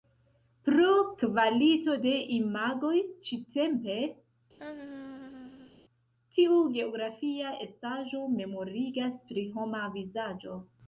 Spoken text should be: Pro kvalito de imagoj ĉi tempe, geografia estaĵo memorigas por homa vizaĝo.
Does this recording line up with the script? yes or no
no